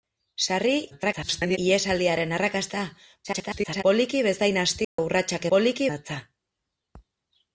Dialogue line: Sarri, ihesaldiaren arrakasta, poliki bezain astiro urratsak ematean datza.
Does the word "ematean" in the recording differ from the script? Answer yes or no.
yes